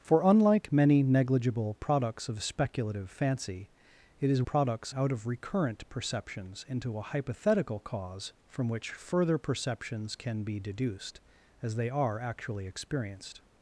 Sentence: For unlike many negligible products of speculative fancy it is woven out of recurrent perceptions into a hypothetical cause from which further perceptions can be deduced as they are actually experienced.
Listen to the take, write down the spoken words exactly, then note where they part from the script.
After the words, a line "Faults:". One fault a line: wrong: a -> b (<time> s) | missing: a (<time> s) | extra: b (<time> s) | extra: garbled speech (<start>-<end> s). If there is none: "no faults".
For unlike many negligible products of speculative fancy it is products out of recurrent perceptions into a hypothetical cause from which further perceptions can be deduced as they are actually experienced.
Faults:
wrong: woven -> products (4.4 s)